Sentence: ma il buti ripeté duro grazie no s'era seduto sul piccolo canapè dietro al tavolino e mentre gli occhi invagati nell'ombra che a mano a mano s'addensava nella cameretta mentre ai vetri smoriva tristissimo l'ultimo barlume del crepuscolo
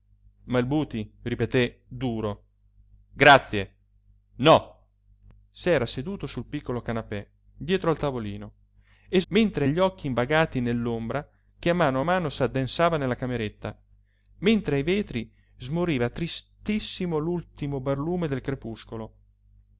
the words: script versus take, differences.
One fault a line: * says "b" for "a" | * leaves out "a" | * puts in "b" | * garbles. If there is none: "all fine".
all fine